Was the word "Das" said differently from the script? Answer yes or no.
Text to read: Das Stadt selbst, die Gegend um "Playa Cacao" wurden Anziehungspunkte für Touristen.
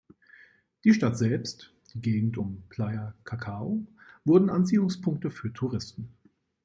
yes